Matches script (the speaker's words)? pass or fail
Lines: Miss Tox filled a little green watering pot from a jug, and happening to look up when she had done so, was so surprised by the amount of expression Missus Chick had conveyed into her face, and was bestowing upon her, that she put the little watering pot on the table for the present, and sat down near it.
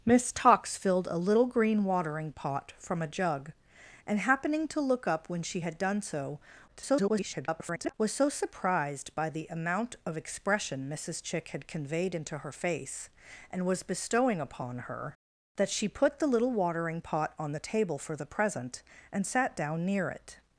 fail